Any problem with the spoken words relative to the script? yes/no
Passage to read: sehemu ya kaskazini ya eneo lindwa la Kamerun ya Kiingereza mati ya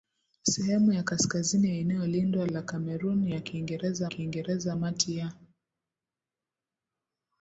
yes